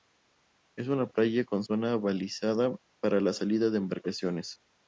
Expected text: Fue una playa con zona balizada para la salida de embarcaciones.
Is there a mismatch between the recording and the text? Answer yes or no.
yes